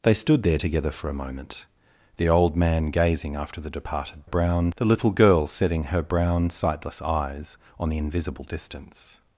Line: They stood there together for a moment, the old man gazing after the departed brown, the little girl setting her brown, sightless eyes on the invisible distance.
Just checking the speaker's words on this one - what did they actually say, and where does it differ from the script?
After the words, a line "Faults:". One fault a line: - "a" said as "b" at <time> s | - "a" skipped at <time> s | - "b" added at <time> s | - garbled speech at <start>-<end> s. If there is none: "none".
They stood there together for a moment, the old man gazing after the departed brown, the little girl setting her brown, sightless eyes on the invisible distance.
Faults:
none